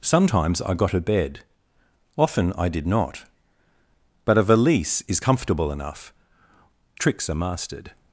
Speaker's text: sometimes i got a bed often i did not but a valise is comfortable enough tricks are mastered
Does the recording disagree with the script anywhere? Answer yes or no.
no